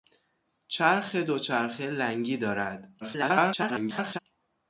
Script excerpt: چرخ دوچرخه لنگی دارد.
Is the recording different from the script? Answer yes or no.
yes